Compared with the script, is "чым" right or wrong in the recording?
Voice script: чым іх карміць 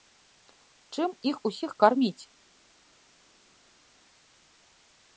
right